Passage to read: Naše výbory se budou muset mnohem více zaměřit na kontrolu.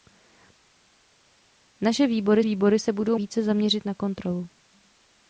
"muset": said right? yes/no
no